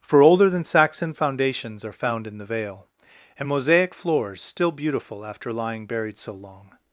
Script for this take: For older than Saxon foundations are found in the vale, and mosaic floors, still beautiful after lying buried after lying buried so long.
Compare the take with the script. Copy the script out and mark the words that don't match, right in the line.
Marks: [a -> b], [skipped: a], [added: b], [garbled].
For older than Saxon foundations are found in the vale, and mosaic floors, still beautiful after lying buried [skipped: after lying buried] so long.